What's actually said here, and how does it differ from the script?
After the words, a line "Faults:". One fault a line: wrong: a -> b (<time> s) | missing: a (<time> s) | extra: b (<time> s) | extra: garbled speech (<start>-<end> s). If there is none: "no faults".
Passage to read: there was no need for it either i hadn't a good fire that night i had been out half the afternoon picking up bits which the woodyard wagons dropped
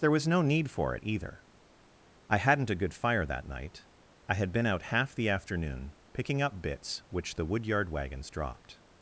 there was no need for it either i hadn't a good fire that night i had been out half the afternoon picking up bits which the woodyard wagons dropped
Faults:
no faults